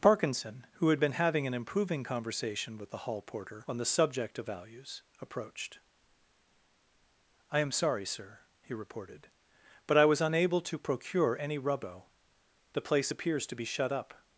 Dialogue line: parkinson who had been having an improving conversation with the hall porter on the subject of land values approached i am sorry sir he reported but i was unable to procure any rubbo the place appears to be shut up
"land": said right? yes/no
no